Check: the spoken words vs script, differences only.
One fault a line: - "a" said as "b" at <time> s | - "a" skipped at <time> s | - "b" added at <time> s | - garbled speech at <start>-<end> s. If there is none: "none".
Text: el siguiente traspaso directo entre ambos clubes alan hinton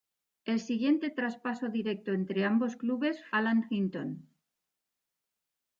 none